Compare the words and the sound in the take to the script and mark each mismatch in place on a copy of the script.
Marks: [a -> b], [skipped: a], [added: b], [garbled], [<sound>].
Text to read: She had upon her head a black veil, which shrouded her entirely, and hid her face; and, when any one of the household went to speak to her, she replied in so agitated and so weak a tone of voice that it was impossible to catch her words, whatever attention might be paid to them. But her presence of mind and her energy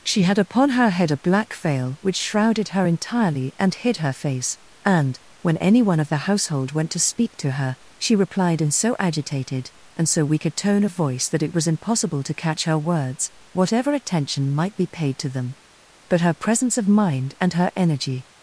She had upon her head a black veil, which shrouded her entirely, and hid her face; and, when any one of the household went to speak to her, she replied in so agitated and so weak a tone of voice that it was impossible to catch her words, whatever attention might be paid to them. But her presence of mind and her energy